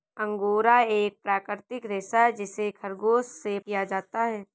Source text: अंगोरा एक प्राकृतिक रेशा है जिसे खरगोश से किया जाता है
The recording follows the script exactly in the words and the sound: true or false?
true